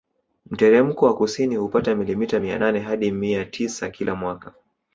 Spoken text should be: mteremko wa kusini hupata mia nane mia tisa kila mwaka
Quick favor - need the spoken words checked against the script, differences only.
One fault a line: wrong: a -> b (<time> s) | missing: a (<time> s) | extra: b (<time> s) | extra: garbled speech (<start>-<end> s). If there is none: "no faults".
extra: milimita (1.9 s)
extra: hadi (2.8 s)